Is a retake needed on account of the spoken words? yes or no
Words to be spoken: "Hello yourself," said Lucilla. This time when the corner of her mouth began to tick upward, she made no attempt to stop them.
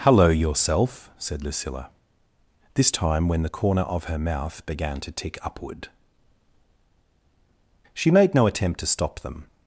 no